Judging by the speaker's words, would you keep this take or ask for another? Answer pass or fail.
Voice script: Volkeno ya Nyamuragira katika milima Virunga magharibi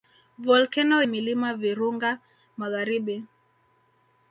fail